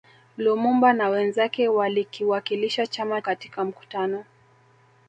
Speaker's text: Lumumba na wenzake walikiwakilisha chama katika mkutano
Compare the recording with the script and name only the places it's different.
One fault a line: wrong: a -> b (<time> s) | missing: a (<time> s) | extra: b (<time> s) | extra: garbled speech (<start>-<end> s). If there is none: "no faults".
no faults